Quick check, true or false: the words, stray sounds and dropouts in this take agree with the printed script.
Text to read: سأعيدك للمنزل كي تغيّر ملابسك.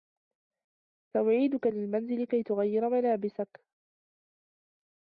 true